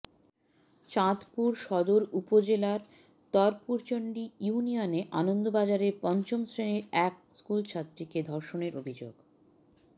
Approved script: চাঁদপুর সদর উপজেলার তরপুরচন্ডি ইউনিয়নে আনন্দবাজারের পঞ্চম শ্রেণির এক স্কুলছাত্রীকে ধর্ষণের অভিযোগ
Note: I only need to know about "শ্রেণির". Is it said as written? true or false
true